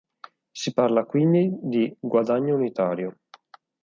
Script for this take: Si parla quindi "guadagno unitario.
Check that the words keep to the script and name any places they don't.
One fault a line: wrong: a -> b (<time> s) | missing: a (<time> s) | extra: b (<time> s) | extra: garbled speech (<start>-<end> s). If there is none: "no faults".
extra: di (1.6 s)